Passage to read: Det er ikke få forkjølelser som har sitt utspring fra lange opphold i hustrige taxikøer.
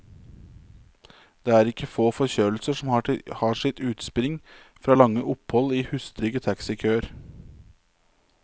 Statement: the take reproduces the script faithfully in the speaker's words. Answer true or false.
true